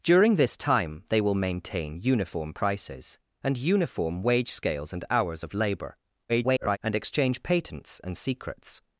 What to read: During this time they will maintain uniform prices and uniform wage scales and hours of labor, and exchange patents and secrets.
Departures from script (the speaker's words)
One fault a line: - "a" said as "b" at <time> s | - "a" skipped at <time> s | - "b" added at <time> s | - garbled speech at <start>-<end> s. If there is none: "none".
- garbled speech at 6.3-6.8 s